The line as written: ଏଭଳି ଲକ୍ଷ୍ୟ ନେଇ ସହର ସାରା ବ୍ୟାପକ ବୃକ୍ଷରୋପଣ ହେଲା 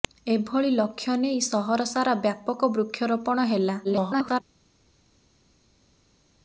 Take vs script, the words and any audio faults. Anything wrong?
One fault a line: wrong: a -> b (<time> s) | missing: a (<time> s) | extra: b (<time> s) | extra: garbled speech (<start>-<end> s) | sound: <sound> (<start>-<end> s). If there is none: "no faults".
extra: garbled speech (3.8-4.4 s)